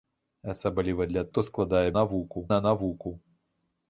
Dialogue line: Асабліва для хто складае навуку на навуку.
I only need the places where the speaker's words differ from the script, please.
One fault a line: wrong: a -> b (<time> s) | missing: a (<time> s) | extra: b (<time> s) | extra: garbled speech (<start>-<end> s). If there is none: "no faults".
no faults